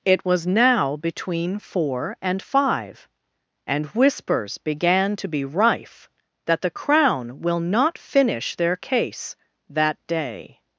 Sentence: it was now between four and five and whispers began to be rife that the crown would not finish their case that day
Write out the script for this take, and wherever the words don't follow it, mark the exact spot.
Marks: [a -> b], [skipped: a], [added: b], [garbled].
it was now between four and five and whispers began to be rife that the crown [would -> will] not finish their case that day